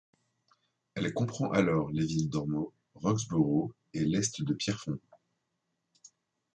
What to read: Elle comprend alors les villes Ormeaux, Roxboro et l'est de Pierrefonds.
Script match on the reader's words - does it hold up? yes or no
yes